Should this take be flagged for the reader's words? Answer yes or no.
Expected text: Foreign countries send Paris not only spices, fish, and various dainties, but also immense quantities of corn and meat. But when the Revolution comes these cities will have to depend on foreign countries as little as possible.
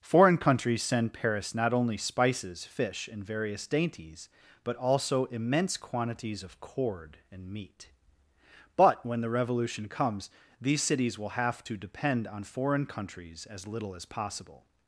yes